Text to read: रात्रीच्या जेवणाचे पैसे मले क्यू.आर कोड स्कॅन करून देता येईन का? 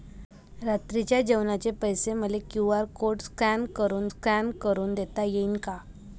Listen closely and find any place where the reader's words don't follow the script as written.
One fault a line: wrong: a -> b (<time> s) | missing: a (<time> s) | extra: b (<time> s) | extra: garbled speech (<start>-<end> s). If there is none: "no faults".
extra: स्कॅन करून (4.1 s)